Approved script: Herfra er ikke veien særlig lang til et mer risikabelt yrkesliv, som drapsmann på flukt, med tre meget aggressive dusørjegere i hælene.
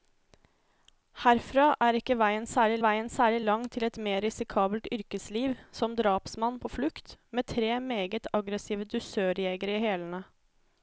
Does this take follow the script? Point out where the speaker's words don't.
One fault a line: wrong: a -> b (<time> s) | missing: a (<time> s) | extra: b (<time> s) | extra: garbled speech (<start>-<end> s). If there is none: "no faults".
extra: veien særlig (2.8 s)